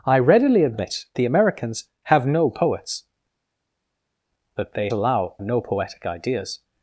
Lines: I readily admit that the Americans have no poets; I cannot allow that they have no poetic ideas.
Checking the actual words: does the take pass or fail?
fail